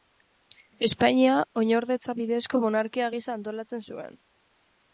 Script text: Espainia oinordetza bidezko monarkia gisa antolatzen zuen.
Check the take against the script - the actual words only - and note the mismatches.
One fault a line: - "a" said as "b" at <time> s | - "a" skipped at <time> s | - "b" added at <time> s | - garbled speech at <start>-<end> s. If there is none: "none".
none